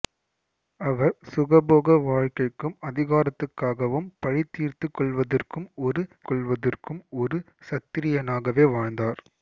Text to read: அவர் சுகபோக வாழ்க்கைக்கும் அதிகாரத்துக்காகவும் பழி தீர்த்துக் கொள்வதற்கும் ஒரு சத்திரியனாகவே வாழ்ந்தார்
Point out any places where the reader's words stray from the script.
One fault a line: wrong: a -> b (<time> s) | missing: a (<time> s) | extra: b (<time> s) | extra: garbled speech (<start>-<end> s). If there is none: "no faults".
extra: கொள்வதற்கும் ஒரு (6.3 s)